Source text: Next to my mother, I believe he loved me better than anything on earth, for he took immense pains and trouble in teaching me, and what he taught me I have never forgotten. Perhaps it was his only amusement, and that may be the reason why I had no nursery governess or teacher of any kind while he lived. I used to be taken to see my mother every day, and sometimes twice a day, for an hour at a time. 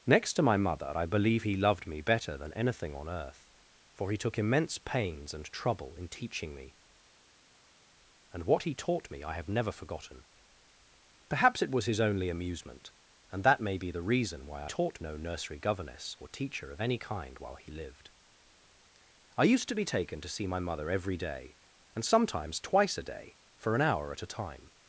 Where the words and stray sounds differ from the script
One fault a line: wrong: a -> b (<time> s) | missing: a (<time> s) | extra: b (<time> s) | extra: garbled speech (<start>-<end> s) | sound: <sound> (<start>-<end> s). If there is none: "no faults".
wrong: had -> taught (14.6 s)